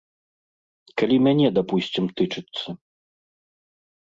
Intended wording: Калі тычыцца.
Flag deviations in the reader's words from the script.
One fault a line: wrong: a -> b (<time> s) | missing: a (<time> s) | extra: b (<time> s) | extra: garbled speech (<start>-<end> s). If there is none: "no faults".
extra: мяне дапусцім (1.3 s)